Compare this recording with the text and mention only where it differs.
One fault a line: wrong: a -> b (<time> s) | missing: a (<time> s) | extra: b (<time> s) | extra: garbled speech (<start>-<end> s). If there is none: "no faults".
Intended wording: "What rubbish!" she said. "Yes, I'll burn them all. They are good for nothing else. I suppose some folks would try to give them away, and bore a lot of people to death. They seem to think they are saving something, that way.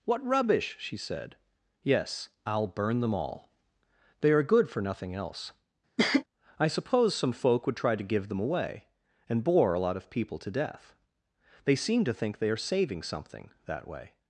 wrong: folks -> folk (7.3 s)